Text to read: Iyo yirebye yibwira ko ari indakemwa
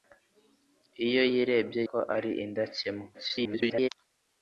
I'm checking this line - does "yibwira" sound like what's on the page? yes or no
no